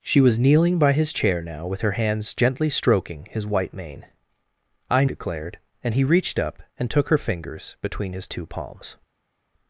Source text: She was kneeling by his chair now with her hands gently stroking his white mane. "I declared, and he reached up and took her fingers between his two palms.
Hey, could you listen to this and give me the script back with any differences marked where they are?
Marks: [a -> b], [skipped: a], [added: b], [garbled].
She was kneeling by his chair now with her hands gently stroking his white mane. "I declared, and he reached up and took her fingers between his two palms.